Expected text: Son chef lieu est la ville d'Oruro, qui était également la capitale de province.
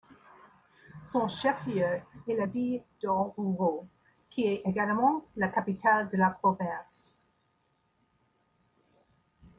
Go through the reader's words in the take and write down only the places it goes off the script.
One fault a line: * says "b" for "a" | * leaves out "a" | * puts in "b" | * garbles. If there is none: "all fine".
* says "est" for "était"
* puts in "la"